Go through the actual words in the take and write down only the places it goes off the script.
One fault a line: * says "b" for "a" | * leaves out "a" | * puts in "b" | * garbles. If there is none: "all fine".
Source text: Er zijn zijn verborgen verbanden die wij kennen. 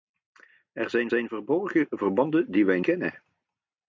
all fine